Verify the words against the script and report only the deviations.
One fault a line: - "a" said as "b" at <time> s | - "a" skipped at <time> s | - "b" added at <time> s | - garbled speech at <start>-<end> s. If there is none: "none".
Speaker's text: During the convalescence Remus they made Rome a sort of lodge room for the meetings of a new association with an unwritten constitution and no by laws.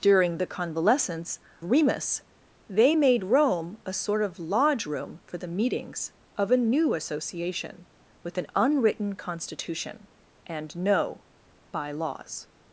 none